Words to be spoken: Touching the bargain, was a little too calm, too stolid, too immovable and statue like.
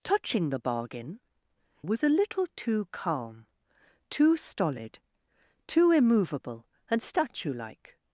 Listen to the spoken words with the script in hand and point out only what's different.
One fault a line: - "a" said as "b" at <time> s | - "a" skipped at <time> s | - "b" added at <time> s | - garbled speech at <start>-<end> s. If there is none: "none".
none